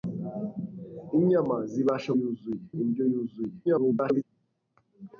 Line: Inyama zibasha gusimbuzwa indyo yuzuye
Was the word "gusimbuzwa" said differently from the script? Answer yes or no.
yes